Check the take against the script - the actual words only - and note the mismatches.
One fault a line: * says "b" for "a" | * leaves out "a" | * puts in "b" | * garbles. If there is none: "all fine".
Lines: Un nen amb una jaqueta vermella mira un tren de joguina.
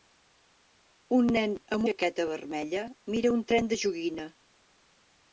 * leaves out "una"